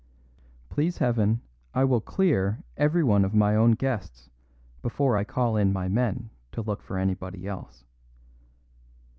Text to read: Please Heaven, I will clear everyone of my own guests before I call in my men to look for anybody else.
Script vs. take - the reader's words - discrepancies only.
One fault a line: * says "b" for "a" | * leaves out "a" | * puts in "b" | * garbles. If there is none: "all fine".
all fine